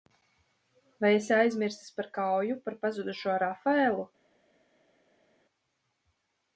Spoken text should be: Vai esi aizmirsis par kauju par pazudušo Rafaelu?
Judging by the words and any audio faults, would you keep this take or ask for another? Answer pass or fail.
pass